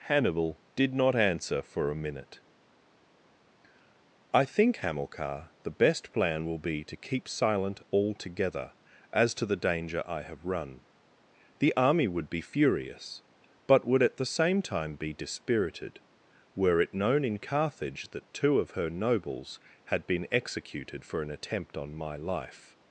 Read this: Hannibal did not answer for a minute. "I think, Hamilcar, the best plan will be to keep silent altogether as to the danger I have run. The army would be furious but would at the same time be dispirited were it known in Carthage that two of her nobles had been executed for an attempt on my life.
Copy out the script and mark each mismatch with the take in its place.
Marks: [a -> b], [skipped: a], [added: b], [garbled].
Hannibal did not answer for a minute. "I think, Hamilcar, the best plan will be to keep silent altogether as to the danger I have run. The army would be furious but would at the same time be dispirited were it known in Carthage that two of her nobles had been executed for an attempt on my life.